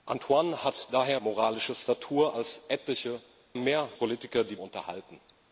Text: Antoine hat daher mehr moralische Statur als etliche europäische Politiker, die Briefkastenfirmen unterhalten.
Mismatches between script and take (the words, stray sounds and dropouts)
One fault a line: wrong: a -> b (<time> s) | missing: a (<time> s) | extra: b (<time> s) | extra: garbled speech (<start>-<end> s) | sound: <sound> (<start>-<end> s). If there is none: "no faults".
missing: mehr (1.2 s)
wrong: europäische -> mehr (3.5 s)
missing: Briefkastenfirmen (4.6 s)